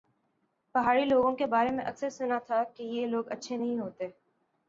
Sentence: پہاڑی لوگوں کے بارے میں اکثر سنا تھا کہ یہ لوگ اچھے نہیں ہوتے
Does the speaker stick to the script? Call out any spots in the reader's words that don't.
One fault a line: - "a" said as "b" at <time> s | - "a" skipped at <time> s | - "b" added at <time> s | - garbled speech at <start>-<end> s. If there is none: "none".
none